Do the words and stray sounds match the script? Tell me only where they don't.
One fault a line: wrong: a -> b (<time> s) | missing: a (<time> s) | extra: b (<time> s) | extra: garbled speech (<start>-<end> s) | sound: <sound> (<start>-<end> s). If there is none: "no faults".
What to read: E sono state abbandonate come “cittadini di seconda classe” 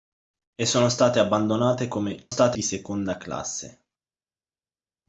wrong: cittadini -> state (2.3 s)